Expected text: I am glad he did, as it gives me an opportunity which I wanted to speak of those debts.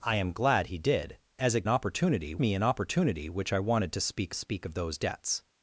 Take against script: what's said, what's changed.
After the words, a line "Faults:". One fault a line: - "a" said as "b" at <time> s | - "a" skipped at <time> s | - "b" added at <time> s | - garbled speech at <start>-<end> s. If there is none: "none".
I am glad he did, as it opportunity me an opportunity which I wanted to speak speak of those debts.
Faults:
- "gives" said as "opportunity" at 1.7 s
- "speak" added at 4.3 s